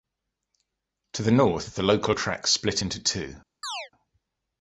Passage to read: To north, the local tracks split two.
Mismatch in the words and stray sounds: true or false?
true